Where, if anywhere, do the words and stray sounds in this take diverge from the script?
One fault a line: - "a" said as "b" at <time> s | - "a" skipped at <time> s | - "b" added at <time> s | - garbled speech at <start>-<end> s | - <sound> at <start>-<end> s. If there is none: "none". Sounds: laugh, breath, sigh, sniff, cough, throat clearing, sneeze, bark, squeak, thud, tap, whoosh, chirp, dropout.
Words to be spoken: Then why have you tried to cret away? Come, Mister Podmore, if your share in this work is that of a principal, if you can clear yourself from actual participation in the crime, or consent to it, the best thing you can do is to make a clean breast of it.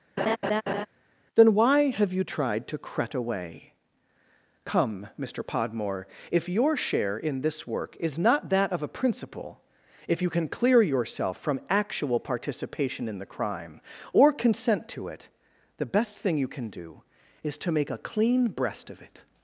- laugh at 0.2-0.9 s
- "not" added at 8.2 s